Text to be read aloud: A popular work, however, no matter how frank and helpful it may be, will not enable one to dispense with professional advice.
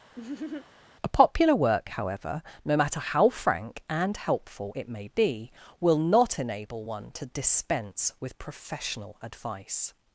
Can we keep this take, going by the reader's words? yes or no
yes